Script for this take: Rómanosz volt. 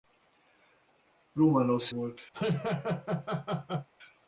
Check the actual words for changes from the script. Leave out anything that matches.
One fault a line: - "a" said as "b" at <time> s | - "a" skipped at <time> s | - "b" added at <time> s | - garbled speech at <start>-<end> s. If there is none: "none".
none